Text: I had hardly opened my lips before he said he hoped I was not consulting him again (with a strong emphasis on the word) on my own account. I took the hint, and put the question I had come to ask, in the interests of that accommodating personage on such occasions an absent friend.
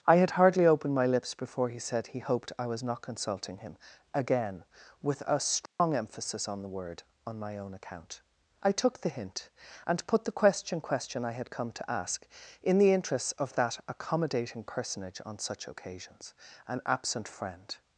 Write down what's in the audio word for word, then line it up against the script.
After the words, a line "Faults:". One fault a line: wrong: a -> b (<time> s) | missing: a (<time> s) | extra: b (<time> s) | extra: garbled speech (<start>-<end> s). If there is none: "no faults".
I had hardly opened my lips before he said he hoped I was not consulting him again (with a strong emphasis on the word) on my own account. I took the hint, and put the question question I had come to ask, in the interests of that accommodating personage on such occasions an absent friend.
Faults:
extra: question (10.8 s)